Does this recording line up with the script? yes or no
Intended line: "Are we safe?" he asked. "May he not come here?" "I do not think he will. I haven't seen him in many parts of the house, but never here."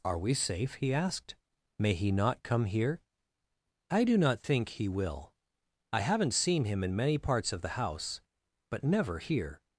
yes